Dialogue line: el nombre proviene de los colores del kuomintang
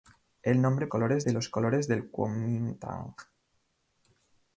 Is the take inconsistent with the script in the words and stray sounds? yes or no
yes